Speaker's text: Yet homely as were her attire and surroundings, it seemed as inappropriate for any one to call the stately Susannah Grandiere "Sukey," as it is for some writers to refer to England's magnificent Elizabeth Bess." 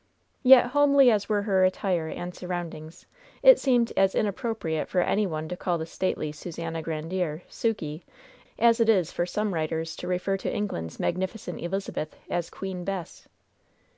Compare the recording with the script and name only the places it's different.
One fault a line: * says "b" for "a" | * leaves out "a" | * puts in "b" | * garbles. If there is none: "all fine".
* puts in "as Queen"